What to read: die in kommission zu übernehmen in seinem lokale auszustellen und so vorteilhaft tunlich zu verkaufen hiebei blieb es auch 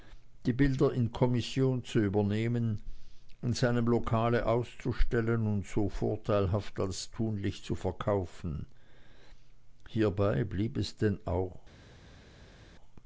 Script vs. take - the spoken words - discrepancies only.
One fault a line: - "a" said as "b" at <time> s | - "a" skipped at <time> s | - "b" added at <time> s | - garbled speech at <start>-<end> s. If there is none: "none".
- "bilder" added at 0.5 s
- "als" added at 6.8 s
- "denn" added at 10.9 s